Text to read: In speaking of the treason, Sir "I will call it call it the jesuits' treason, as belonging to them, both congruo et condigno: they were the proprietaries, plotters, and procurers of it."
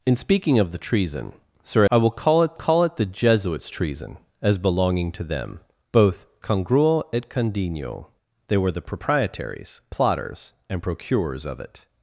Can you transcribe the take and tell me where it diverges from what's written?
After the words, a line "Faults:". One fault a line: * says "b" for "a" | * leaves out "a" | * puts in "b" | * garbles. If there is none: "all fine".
In speaking of the treason, Sir "I will call it call it the jesuits' treason, as belonging to them, both congruo et condigno: they were the proprietaries, plotters, and procurers of it."
Faults:
all fine